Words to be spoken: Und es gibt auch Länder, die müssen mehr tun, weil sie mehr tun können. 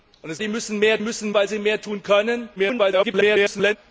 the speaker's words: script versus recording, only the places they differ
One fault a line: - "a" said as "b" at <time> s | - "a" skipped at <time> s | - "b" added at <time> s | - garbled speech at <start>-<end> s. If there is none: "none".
- "gibt auch Länder" skipped at 0.4 s
- "tun" said as "müssen" at 1.0 s
- garbled speech at 2.6-3.8 s